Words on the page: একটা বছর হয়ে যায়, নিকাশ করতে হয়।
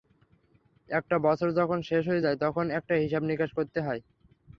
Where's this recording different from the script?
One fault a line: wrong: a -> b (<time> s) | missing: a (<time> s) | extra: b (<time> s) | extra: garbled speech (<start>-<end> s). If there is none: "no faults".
extra: যখন শেষ (1.6 s)
extra: তখন একটা হিসাব (2.4 s)